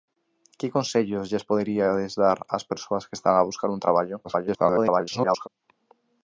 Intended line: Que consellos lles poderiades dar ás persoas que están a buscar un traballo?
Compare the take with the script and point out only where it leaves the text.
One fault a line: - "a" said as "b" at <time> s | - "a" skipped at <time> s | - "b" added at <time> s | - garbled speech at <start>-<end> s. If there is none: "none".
- garbled speech at 4.2-5.5 s